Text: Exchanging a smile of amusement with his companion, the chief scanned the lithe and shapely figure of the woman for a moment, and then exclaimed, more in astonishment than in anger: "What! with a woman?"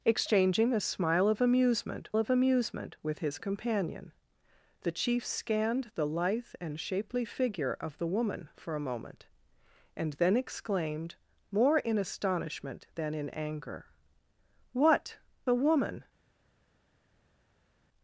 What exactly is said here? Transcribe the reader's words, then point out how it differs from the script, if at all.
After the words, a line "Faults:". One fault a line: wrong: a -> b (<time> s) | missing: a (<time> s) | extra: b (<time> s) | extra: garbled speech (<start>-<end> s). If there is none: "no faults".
Exchanging a smile of amusement of amusement with his companion, the chief scanned the lithe and shapely figure of the woman for a moment, and then exclaimed, more in astonishment than in anger: "What! a woman?"
Faults:
extra: of amusement (2.2 s)
missing: with (15.2 s)